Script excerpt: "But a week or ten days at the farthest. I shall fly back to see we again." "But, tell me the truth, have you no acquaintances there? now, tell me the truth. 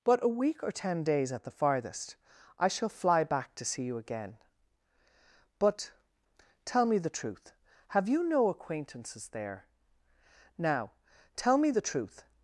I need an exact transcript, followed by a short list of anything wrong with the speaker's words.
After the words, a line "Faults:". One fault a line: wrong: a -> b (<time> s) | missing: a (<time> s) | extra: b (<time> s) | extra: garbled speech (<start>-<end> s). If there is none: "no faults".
"But a week or ten days at the farthest. I shall fly back to see you again." "But, tell me the truth, have you no acquaintances there? now, tell me the truth.
Faults:
wrong: we -> you (3.8 s)